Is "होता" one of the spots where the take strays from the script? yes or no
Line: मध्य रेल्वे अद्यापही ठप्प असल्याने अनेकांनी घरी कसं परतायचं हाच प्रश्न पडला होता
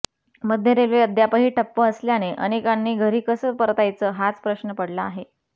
yes